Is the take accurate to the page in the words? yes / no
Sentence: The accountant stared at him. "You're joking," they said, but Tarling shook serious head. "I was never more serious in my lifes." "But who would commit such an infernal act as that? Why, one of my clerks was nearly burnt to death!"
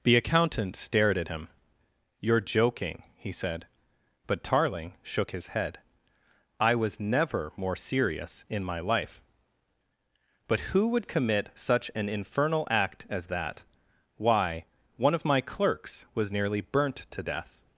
no